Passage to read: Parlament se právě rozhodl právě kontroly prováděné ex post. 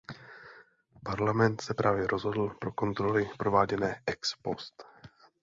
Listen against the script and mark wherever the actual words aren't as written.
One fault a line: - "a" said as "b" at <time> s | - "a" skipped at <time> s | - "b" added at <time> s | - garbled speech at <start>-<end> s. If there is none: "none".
- "právě" said as "pro" at 2.6 s